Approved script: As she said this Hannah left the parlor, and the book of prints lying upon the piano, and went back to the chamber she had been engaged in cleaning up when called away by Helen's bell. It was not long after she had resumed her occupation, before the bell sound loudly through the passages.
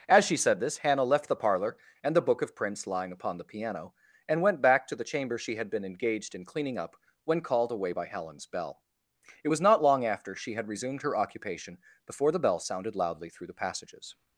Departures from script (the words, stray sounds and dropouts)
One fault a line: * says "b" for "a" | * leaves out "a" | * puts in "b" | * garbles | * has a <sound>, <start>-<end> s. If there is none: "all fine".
* says "sounded" for "sound"